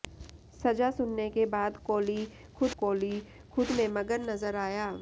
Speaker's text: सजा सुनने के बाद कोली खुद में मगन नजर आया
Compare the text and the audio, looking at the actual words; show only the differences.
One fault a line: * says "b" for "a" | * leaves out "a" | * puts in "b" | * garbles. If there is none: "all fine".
* puts in "कोली खुद"